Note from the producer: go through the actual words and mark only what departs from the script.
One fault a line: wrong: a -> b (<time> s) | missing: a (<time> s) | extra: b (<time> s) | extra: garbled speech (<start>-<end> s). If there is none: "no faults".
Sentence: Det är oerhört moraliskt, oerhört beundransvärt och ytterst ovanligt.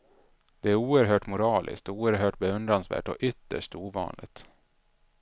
no faults